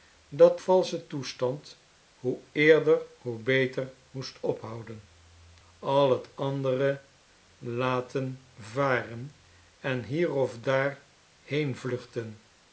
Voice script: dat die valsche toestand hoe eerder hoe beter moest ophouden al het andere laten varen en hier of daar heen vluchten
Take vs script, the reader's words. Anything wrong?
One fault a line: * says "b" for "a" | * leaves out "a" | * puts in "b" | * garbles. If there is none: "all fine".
* leaves out "die"